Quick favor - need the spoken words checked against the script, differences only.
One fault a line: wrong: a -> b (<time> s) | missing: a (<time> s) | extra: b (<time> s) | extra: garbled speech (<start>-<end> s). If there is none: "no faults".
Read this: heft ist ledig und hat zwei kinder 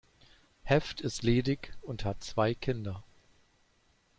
no faults